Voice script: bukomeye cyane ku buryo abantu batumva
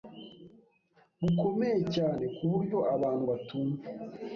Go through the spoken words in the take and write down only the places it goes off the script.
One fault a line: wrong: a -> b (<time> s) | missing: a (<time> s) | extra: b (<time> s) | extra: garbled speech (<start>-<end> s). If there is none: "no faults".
no faults